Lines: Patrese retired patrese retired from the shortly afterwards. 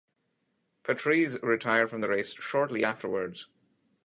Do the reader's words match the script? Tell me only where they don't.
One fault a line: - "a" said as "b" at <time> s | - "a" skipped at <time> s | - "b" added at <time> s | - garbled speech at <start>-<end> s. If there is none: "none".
- "patrese retired" skipped at 1.9 s
- "race" added at 2.1 s